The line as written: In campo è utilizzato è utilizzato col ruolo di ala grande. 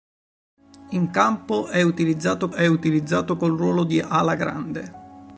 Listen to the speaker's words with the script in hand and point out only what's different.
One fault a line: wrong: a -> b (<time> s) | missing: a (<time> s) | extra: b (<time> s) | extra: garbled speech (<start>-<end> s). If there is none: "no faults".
no faults